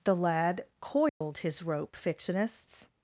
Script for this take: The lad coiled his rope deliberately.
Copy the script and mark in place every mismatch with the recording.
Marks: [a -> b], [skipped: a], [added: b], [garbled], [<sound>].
The lad coiled [dropout] his rope [deliberately. -> fictionists]